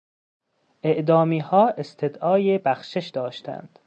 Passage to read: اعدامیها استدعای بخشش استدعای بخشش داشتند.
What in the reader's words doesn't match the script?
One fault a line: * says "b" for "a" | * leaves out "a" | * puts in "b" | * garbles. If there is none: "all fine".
* leaves out "استدعای بخشش"